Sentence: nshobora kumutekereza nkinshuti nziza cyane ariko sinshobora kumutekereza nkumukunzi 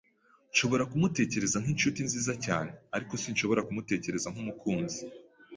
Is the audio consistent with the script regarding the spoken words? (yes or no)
yes